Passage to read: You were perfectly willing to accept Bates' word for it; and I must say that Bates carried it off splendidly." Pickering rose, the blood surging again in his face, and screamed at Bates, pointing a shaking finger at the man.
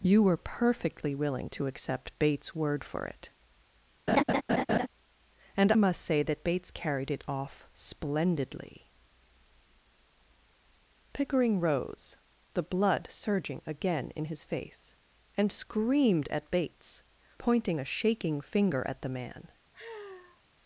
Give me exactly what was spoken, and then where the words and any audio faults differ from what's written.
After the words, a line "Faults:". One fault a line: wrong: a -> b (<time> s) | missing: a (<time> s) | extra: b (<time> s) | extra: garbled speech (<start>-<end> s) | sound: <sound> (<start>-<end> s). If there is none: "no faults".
You were perfectly willing to accept Bates' word for it; and must say that Bates carried it off splendidly." Pickering rose, the blood surging again in his face, and screamed at Bates, pointing a shaking finger at the man.
Faults:
sound: laugh (4.1-4.9 s)
missing: I (5.7 s)
sound: sigh (19.7-20.4 s)